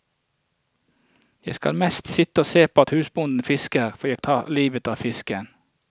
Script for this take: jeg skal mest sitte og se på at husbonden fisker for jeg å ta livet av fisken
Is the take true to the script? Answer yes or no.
yes